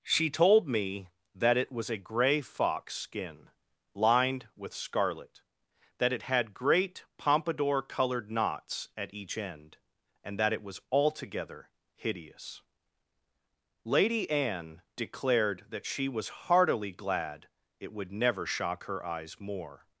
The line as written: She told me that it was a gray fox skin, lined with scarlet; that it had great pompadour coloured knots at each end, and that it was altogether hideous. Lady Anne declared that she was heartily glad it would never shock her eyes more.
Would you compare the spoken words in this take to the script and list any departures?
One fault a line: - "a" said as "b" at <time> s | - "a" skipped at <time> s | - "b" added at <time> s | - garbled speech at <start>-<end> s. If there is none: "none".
none